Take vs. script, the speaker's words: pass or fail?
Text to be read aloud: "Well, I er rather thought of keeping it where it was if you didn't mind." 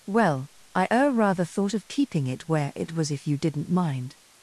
pass